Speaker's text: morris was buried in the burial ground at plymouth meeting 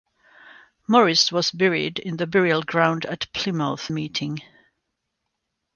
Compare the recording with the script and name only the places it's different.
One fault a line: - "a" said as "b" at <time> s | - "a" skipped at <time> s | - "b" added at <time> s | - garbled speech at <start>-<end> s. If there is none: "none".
none